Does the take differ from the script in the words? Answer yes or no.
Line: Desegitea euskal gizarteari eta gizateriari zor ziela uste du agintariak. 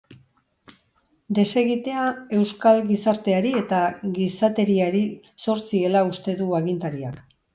no